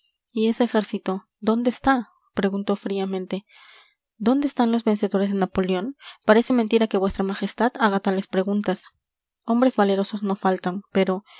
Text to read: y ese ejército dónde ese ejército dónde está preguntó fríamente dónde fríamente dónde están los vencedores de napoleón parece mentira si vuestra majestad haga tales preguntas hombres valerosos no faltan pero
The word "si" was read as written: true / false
false